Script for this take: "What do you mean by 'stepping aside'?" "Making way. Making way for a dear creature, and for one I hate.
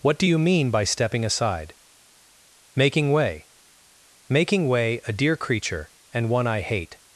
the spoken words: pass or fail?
fail